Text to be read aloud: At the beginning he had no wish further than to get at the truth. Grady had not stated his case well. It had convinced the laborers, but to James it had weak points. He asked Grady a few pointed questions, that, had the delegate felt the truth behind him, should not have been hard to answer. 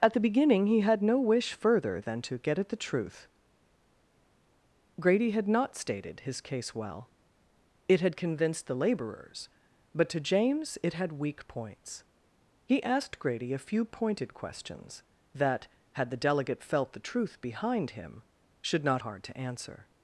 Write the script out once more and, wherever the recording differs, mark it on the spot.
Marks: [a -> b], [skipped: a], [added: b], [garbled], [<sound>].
At the beginning he had no wish further than to get at the truth. Grady had not stated his case well. It had convinced the laborers, but to James it had weak points. He asked Grady a few pointed questions, that, had the delegate felt the truth behind him, should not [skipped: have been] hard to answer.